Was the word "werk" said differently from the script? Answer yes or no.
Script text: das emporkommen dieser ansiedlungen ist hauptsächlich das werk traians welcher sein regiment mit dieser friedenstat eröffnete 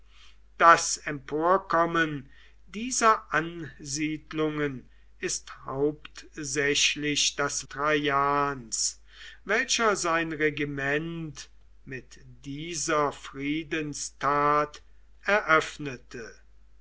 yes